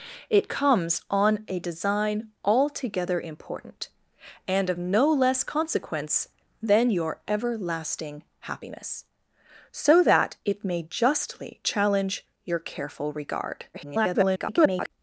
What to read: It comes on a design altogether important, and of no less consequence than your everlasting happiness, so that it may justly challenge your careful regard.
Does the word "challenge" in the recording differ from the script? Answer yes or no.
no